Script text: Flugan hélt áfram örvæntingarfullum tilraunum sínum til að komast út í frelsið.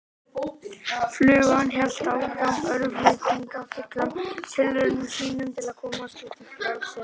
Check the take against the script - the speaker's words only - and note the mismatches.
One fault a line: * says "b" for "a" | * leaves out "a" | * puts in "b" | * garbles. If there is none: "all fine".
all fine